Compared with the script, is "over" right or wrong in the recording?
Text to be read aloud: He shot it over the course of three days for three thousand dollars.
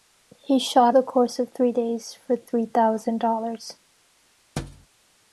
wrong